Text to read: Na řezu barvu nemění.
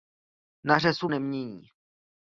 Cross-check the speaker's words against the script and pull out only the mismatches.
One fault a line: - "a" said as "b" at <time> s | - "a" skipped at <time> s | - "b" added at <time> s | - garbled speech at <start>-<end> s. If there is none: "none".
- "barvu" skipped at 1.1 s